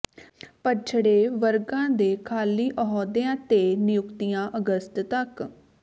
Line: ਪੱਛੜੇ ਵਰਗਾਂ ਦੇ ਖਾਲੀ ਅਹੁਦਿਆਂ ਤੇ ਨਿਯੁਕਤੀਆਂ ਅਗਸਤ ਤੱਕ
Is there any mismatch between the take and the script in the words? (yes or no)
no